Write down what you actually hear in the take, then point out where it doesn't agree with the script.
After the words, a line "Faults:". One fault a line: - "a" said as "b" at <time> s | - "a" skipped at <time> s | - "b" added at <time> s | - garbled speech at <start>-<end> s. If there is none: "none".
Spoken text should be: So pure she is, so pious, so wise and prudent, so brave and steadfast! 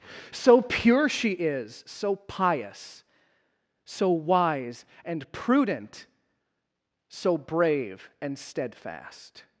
So pure she is, so pious, so wise and prudent, so brave and steadfast!
Faults:
none